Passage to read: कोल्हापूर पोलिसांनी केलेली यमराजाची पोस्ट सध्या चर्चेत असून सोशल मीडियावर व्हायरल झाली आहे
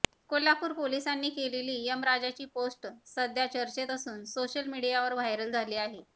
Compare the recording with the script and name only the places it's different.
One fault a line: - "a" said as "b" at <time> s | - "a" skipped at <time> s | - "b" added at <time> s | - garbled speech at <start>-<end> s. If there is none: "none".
none